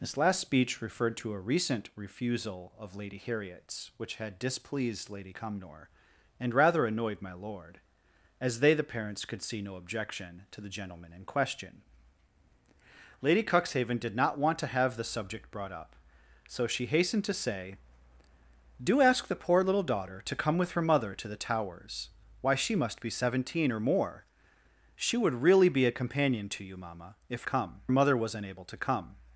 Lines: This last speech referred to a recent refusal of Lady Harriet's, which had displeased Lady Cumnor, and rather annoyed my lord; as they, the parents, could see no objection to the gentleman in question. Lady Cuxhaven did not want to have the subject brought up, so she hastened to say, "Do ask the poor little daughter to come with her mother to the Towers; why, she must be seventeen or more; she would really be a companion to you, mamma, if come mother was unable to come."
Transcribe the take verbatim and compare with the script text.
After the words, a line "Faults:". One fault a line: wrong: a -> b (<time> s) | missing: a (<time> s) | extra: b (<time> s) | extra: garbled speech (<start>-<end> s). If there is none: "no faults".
This last speech referred to a recent refusal of Lady Harriet's, which had displeased Lady Cumnor, and rather annoyed my lord; as they, the parents, could see no objection to the gentleman in question. Lady Cuxhaven did not want to have the subject brought up, so she hastened to say, "Do ask the poor little daughter to come with her mother to the Towers; why, she must be seventeen or more; she would really be a companion to you, mamma, if come mother was unable to come."
Faults:
no faults